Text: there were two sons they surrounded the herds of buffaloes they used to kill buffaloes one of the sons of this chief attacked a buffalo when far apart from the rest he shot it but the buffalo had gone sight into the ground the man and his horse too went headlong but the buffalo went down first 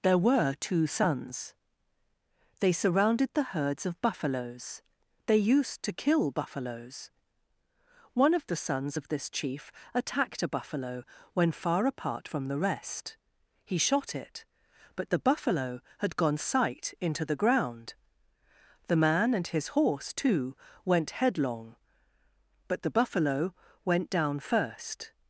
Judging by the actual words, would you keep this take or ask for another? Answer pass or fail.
pass